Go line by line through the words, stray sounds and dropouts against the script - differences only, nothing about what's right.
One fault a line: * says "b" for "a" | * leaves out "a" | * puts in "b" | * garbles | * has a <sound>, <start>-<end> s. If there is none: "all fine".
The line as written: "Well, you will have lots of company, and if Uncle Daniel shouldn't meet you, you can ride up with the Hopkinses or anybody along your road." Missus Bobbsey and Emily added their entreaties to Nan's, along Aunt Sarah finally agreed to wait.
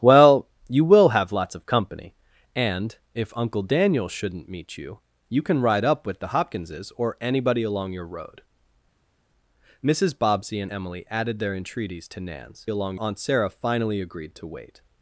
all fine